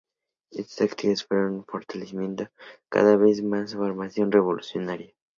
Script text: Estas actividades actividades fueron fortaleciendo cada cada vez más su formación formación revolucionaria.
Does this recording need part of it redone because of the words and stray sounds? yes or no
yes